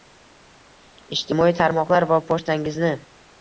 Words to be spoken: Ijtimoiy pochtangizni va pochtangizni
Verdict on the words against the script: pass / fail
fail